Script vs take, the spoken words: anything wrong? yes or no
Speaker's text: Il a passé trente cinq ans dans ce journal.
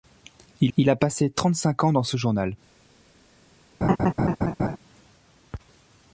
yes